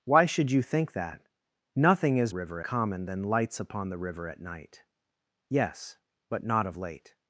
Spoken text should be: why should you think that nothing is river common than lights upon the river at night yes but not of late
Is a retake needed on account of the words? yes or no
no